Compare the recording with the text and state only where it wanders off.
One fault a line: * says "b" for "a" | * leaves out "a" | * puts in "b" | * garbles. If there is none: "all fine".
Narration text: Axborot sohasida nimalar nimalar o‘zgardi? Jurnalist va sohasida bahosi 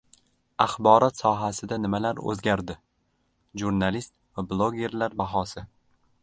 * leaves out "nimalar"
* says "blogerlar" for "sohasida"